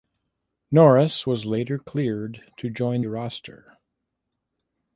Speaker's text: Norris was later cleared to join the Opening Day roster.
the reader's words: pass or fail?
fail